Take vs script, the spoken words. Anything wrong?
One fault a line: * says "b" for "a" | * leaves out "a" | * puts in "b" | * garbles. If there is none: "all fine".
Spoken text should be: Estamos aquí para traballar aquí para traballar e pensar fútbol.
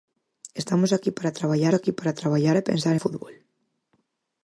all fine